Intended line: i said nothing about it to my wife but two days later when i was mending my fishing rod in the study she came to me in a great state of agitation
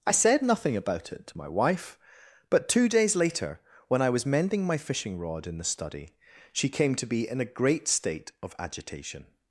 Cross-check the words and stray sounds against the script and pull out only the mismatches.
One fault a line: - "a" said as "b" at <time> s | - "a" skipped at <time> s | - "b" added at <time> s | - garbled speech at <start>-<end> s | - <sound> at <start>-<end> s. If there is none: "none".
- "me" said as "be" at 7.1 s